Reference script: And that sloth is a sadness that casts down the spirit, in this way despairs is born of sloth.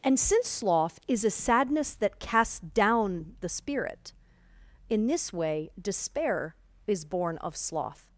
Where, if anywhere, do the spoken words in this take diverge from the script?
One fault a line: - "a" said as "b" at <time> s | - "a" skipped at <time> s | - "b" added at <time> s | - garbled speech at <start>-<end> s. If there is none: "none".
- "that" said as "since" at 0.2 s
- "despairs" said as "despair" at 5.8 s